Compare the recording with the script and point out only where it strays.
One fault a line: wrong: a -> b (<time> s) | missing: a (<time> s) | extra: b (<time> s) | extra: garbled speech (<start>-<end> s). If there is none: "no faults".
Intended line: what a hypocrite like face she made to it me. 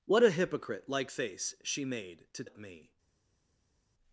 no faults